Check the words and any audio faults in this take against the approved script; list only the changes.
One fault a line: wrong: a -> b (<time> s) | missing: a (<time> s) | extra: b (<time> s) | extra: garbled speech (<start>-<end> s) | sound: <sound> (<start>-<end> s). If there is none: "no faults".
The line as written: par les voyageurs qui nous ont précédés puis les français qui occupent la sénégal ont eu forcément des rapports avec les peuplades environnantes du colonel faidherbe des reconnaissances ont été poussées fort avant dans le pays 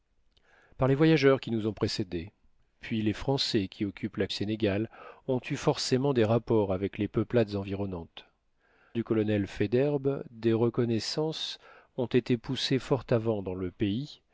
no faults